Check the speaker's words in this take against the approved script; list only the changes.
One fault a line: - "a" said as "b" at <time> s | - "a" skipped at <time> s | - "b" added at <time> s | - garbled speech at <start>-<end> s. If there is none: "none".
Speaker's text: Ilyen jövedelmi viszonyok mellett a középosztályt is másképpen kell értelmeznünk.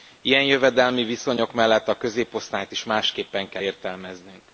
none